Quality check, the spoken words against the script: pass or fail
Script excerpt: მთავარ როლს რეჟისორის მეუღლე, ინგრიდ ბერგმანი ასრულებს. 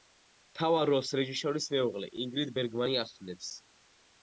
pass